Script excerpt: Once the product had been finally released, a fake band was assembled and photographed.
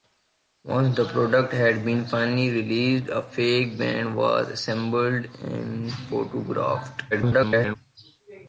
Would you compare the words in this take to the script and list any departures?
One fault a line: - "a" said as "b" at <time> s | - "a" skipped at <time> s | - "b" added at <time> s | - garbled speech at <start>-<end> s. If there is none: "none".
- garbled speech at 7.1-7.8 s